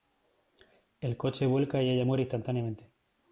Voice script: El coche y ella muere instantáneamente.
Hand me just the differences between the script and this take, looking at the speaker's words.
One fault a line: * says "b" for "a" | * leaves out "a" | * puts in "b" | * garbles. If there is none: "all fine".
* puts in "vuelca"